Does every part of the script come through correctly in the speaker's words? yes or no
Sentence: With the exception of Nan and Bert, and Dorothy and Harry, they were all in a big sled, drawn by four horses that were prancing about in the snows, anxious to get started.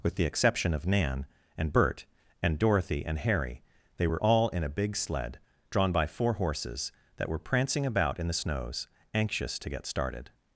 yes